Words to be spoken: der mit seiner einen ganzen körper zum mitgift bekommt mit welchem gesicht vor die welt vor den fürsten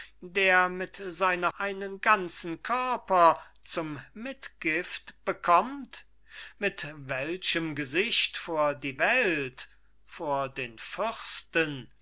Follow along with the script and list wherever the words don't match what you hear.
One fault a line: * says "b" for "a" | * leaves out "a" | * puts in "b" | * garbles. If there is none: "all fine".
all fine